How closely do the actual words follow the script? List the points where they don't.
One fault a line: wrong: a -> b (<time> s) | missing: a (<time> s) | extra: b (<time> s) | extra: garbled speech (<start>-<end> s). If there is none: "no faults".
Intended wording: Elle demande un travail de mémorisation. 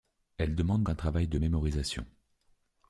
no faults